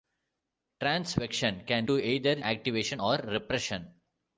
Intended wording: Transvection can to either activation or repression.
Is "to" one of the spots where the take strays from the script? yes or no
no